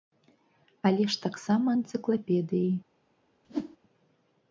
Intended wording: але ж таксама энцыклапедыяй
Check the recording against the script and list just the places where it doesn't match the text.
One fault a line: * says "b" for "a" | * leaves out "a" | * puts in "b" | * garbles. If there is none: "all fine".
all fine